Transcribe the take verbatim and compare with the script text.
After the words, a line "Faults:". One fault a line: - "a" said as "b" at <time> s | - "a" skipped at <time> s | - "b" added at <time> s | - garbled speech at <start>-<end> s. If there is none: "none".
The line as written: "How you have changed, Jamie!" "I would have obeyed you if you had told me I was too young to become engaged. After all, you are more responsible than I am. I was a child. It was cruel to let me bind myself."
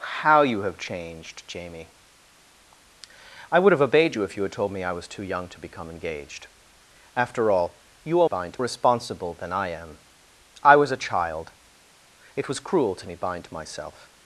"How you have changed, Jamie!" "I would have obeyed you if you had told me I was too young to become engaged. After all, you are bind responsible than I am. I was a child. It was cruel to me bind myself."
Faults:
- "more" said as "bind" at 8.2 s
- "let" skipped at 13.1 s